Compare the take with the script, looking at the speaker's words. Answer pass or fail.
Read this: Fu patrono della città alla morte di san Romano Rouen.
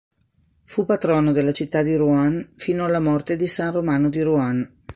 fail